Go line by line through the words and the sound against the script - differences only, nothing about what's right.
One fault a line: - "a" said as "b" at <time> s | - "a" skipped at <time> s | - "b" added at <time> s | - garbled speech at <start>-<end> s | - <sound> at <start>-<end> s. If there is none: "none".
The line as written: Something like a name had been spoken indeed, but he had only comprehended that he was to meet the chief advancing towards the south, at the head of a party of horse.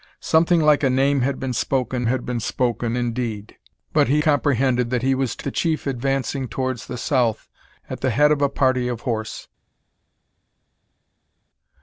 - "had been spoken" added at 2.1 s
- "had only" skipped at 4.2 s
- "meet" skipped at 5.5 s